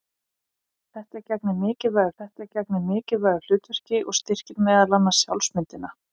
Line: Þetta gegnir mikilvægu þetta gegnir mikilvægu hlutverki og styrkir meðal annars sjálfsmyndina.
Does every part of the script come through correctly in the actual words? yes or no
yes